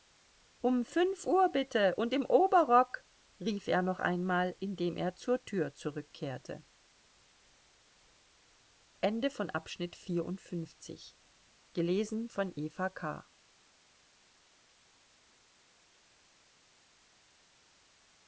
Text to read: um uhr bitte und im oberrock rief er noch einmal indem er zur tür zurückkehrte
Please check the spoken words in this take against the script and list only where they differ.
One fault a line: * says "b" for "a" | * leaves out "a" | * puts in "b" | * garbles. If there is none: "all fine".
* puts in "fünf"